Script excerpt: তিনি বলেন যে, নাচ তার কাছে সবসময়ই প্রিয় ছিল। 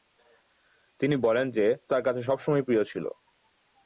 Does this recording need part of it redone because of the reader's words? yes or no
yes